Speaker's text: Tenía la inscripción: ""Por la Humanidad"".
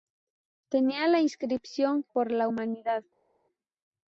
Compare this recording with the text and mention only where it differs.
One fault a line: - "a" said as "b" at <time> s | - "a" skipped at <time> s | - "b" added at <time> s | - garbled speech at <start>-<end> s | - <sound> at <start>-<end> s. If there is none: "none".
none